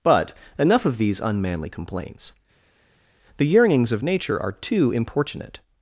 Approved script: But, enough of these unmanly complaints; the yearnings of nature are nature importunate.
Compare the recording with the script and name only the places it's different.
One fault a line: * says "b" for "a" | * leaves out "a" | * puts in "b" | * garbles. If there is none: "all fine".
* says "too" for "nature"